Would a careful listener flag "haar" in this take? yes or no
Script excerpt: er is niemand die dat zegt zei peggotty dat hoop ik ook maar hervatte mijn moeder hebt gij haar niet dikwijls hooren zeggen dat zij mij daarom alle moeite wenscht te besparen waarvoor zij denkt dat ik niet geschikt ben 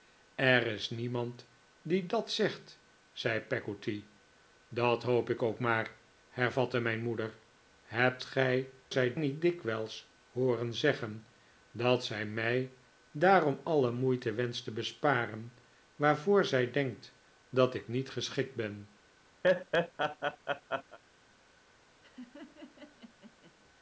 yes